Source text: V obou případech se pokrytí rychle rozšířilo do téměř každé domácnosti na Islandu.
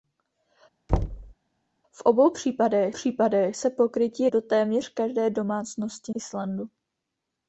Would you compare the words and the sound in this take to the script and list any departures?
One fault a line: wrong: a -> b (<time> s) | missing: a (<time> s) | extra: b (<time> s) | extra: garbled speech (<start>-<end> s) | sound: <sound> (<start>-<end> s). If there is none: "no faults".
sound: thud (0.9-1.3 s)
extra: případech (2.9 s)
missing: rychle rozšířilo (4.3 s)
missing: na (6.1 s)